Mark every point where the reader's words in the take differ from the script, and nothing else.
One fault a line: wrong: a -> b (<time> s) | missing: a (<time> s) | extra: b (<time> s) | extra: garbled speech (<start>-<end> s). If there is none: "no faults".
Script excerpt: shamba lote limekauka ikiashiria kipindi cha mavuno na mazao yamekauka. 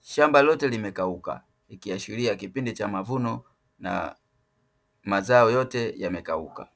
extra: yote (5.5 s)